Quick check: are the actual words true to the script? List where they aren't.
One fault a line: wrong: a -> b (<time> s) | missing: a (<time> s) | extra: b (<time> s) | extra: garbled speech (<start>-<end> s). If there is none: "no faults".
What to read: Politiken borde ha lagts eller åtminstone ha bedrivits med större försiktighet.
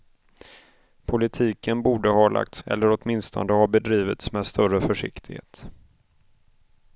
no faults